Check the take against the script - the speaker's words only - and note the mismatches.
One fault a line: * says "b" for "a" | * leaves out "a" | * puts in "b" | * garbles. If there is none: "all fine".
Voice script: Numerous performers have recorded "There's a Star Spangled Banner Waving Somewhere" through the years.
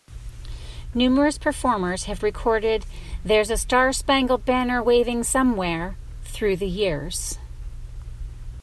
all fine